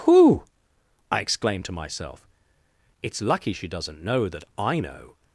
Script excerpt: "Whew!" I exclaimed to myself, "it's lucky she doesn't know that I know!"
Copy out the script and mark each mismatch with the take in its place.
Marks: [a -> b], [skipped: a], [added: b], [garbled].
"Whew!" I exclaimed to myself, "it's lucky she doesn't know that I know!"